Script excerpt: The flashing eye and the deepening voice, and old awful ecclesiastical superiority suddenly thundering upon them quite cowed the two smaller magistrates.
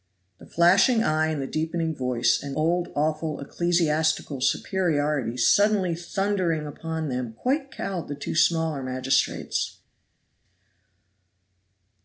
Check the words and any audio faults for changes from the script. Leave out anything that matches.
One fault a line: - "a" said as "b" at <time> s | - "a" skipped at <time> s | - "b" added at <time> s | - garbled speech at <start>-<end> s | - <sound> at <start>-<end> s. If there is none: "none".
none